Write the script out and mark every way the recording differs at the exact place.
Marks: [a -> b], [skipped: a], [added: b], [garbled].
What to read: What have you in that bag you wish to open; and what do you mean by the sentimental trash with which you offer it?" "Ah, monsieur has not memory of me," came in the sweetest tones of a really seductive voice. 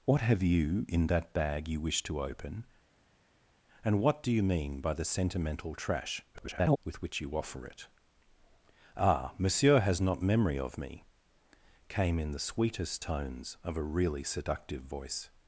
What have you in that bag you wish to open; and what do you mean by the sentimental trash [garbled] with which you offer it?" "Ah, monsieur has not memory of me," came in the sweetest tones of a really seductive voice.